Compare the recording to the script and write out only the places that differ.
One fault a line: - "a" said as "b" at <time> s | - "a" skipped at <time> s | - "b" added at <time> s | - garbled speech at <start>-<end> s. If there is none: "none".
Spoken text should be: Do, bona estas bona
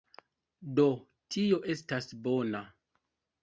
- "bona" said as "tio" at 1.4 s